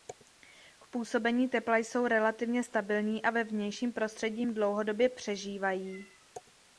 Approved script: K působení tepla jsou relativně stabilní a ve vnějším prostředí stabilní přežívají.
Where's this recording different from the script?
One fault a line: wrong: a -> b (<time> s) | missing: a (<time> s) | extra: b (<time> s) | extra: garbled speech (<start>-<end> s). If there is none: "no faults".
wrong: stabilní -> dlouhodobě (4.4 s)